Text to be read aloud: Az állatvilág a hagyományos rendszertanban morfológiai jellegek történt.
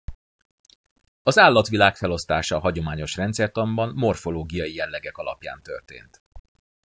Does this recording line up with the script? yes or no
no